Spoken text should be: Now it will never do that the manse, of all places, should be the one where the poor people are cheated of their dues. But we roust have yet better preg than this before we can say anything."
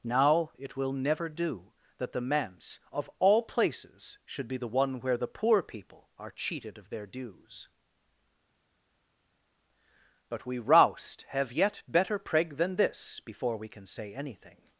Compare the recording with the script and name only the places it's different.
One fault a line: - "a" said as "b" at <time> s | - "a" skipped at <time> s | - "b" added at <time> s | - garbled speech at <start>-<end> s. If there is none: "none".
none